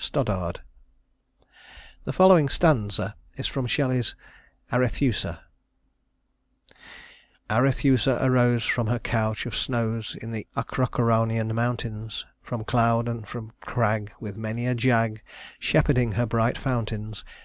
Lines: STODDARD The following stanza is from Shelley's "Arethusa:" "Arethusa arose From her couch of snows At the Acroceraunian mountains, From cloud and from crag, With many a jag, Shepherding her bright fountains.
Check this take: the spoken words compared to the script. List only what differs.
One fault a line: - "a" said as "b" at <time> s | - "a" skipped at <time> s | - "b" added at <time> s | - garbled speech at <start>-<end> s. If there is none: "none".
- "At" said as "In" at 10.2 s